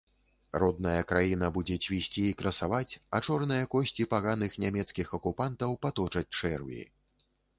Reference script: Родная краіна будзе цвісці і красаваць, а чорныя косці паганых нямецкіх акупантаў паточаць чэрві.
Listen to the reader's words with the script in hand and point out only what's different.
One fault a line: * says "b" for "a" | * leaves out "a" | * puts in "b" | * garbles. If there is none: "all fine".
all fine